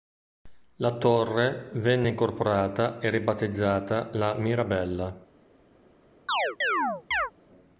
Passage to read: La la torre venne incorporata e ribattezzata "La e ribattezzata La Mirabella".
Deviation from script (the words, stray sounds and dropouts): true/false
true